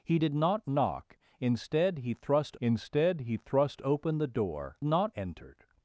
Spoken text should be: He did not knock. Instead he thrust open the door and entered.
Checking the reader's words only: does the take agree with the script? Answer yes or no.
no